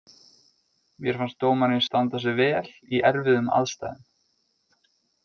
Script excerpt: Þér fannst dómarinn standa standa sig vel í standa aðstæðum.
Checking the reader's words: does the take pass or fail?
fail